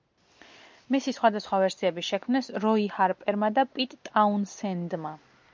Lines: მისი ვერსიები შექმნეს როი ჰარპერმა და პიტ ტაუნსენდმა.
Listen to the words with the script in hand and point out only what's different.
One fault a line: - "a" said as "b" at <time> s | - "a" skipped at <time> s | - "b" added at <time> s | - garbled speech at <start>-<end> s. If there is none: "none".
- "სხვადასხვა" added at 1.2 s